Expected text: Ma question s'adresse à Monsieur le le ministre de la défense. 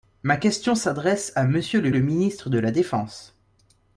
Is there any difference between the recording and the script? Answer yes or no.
no